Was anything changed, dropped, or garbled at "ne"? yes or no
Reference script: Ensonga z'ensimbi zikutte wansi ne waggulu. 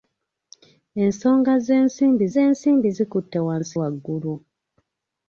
yes